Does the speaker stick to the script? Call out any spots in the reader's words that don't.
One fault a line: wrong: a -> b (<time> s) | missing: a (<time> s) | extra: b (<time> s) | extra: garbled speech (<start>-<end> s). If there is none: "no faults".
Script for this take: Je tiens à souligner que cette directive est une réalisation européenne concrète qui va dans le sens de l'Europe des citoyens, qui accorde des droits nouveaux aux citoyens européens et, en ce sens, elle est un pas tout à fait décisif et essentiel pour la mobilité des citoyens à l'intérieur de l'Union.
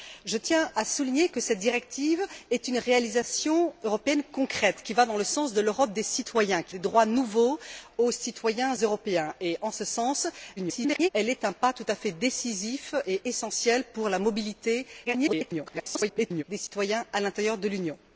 missing: accorde (6.8 s)
extra: garbled speech (10.6-11.1 s)
extra: garbled speech (15.0-16.4 s)